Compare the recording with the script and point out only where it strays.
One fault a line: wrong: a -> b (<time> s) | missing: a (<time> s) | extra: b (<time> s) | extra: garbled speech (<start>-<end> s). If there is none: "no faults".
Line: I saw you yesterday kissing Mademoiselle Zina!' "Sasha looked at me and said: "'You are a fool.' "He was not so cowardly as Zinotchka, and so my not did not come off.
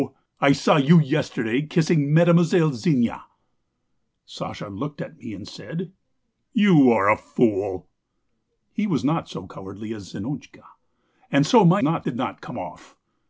no faults